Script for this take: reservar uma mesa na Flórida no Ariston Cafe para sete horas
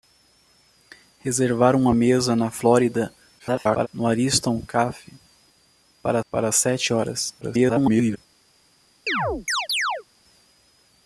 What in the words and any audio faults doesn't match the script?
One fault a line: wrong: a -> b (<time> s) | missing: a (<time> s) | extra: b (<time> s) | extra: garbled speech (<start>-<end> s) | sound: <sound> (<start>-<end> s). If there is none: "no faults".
extra: garbled speech (3.4-3.9 s)
extra: para (6.3 s)
extra: garbled speech (7.4-8.2 s)
sound: chirp (9.1-10.0 s)